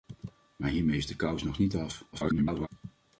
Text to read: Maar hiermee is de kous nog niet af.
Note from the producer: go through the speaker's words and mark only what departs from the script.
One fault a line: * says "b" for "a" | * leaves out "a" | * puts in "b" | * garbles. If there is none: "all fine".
* garbles